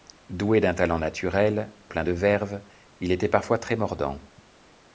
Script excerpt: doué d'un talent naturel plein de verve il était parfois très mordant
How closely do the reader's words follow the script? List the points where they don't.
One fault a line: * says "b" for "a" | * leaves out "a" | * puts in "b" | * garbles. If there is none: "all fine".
all fine